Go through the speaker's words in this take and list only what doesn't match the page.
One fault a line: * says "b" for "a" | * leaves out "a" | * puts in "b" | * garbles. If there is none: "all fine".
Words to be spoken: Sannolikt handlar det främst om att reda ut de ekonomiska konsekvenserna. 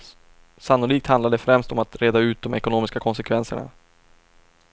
all fine